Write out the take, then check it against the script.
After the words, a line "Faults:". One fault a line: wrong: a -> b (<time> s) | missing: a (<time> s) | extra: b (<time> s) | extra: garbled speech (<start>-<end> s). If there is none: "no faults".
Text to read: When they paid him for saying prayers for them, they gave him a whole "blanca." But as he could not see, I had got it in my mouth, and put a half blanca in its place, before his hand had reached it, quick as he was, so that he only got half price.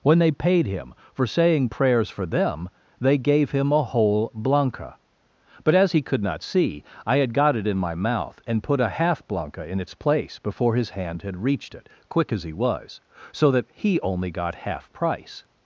When they paid him for saying prayers for them, they gave him a whole "blanca." But as he could not see, I had got it in my mouth, and put a half blanca in its place, before his hand had reached it, quick as he was, so that he only got half price.
Faults:
no faults